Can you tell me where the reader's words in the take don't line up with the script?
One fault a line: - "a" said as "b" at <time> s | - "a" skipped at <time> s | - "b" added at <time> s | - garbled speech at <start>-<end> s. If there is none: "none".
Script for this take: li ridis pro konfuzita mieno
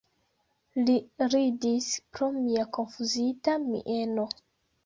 - "mia" added at 2.4 s